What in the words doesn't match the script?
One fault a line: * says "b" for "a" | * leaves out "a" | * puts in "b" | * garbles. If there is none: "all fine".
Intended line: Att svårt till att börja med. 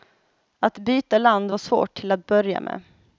* puts in "byta land var"